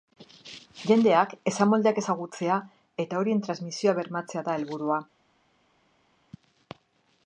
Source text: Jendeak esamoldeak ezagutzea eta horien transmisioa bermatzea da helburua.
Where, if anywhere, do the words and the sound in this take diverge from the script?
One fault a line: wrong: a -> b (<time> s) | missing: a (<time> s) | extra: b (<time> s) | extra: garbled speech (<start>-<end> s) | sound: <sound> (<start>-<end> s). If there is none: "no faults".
no faults